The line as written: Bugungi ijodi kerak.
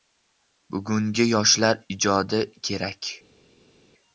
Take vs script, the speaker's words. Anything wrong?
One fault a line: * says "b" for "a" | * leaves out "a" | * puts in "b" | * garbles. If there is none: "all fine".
* puts in "yoshlar"